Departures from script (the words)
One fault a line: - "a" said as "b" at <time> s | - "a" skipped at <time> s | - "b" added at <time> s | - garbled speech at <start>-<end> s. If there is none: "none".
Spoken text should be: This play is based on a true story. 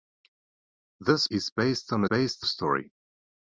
- "play" skipped at 1.3 s
- "true" said as "based" at 2.1 s